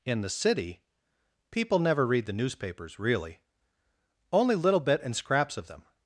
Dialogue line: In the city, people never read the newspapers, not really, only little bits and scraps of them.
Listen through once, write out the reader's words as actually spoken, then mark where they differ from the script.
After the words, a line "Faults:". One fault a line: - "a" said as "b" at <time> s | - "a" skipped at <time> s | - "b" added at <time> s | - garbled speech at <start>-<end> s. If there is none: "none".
In the city, people never read the newspapers, really, only little bit and scraps of them.
Faults:
- "not" skipped at 3.0 s
- "bits" said as "bit" at 4.8 s